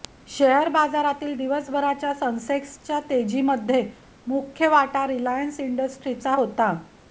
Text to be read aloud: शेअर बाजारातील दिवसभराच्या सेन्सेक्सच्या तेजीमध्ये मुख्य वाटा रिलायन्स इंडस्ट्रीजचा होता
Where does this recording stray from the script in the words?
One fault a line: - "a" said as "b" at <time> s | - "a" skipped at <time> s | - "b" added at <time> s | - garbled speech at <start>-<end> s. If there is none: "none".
none